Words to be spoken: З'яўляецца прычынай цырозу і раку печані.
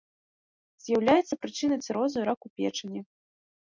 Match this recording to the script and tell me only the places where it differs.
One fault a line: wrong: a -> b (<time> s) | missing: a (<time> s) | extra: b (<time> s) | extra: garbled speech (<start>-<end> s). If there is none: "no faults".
no faults